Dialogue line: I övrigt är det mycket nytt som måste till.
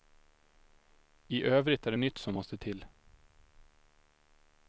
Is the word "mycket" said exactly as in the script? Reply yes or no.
no